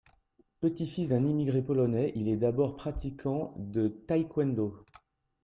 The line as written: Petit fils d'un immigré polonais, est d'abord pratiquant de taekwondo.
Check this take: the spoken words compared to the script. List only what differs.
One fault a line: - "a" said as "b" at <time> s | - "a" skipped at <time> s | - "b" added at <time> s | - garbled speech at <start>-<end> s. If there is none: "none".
- "il" added at 2.1 s